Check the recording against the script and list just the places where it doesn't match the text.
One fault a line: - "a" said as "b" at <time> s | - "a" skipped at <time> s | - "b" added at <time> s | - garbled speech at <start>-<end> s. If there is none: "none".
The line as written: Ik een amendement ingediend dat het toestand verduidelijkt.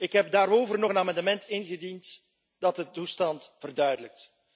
- "heb daarover nog" added at 0.1 s
- "het" said as "de" at 2.8 s